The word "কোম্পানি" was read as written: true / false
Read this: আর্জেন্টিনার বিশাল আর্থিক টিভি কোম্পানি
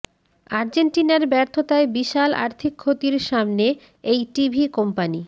true